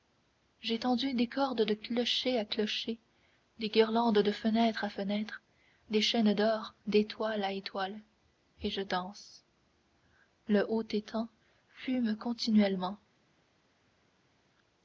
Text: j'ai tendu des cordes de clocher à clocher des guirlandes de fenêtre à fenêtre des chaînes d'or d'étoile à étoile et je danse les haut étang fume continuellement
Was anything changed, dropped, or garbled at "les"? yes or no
yes